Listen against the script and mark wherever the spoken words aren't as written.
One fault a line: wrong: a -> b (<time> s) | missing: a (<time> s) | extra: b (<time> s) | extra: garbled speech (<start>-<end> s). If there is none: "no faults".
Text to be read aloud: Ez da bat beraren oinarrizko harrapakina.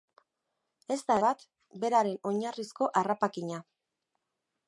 no faults